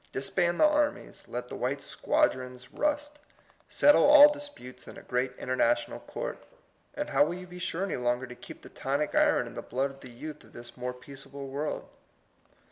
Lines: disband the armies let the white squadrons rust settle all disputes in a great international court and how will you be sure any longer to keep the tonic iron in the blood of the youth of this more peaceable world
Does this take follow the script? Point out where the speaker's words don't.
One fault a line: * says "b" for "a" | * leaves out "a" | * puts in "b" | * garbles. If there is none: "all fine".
all fine